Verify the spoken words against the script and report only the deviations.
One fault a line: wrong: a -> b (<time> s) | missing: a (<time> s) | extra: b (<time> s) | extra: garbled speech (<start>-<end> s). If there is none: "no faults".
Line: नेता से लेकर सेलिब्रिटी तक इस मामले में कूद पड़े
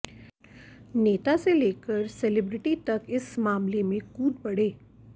no faults